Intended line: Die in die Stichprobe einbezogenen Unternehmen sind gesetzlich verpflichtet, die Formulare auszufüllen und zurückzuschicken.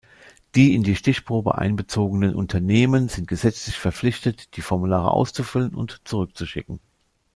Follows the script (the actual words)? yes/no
yes